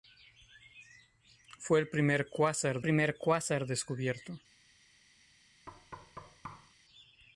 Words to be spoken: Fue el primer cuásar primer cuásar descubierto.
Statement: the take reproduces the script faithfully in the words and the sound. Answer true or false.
false